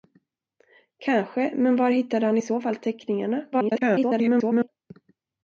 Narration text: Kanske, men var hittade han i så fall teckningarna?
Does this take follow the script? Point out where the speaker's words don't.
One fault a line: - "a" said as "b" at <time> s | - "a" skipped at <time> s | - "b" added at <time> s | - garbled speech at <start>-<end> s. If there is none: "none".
- garbled speech at 3.5-4.7 s